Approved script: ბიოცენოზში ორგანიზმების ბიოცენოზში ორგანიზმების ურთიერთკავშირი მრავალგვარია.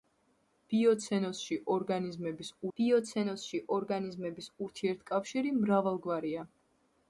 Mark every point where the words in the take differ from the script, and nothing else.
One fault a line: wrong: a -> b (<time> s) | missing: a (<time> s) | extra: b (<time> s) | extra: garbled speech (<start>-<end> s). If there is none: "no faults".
no faults